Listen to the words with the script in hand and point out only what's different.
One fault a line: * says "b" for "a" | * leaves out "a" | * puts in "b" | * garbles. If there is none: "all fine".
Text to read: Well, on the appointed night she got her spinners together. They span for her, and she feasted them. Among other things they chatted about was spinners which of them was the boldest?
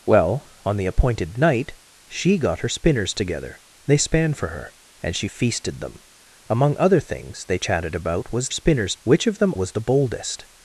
all fine